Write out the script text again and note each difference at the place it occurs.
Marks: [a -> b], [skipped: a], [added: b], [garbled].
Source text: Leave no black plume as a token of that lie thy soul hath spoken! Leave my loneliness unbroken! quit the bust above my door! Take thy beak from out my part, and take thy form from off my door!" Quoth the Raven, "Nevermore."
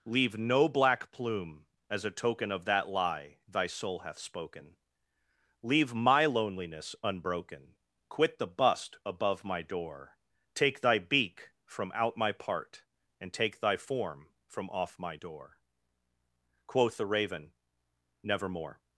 Leave no black plume as a token of that lie thy soul hath spoken! Leave my loneliness unbroken! quit the bust above my door! Take thy beak from out my part, and take thy form from off my door!" Quoth the Raven, "Nevermore."